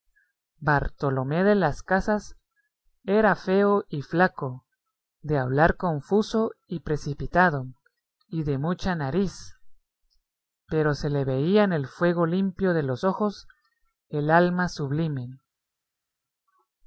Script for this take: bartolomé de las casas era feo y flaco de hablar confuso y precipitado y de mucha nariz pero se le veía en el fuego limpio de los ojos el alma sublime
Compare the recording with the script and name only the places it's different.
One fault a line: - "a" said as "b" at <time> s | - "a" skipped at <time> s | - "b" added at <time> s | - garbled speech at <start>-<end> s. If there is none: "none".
none